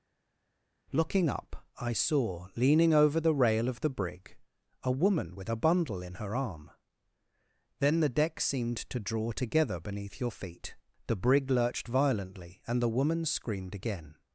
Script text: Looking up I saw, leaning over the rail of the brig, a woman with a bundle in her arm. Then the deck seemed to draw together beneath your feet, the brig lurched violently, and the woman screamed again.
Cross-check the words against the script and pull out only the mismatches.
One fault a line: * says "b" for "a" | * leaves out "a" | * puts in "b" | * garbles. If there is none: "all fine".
all fine